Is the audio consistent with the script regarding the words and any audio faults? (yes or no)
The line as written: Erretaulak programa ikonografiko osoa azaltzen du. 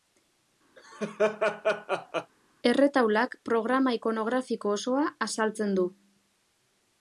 no